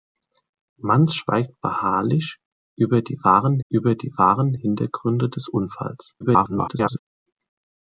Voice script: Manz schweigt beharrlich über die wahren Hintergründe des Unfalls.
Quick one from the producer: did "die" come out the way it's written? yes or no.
yes